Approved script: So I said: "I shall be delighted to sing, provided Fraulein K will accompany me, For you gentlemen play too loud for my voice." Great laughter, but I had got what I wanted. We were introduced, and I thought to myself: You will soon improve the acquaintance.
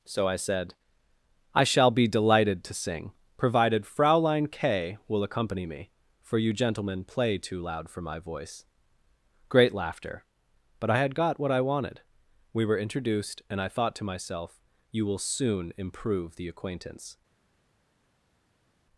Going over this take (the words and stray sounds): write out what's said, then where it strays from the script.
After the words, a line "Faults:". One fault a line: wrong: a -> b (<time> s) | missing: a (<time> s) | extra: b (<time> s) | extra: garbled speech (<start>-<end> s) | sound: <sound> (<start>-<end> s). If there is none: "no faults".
So I said: "I shall be delighted to sing, provided Fraulein K will accompany me, For you gentlemen play too loud for my voice." Great laughter, but I had got what I wanted. We were introduced, and I thought to myself: You will soon improve the acquaintance.
Faults:
no faults